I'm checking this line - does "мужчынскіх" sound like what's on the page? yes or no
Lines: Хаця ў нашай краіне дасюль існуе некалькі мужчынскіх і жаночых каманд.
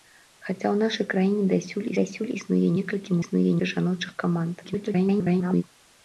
no